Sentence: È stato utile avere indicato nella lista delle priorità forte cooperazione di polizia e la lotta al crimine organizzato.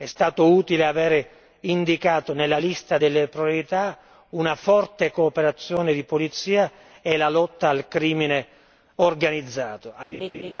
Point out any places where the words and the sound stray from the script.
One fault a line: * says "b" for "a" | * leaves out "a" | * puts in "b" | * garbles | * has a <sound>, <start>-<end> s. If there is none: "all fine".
* puts in "una"
* has a laugh, 10.1-10.5 s